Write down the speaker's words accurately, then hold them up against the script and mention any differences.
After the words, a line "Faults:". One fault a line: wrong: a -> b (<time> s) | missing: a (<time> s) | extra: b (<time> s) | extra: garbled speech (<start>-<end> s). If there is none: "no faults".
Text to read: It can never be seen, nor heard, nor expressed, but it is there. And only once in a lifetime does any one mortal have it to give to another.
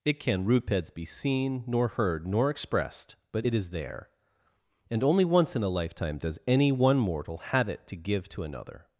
It can rupeds be seen, nor heard, nor expressed, but it is there. And only once in a lifetime does any one mortal have it to give to another.
Faults:
wrong: never -> rupeds (0.5 s)